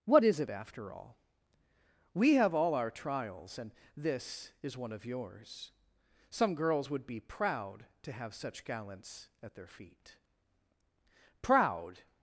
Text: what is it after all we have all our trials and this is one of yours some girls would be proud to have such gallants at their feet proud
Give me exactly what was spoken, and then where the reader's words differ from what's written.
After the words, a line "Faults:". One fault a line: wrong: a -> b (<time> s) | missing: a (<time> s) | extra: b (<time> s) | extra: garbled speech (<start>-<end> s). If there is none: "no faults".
what is it after all we have all our trials and this is one of yours some girls would be proud to have such gallants at their feet proud
Faults:
no faults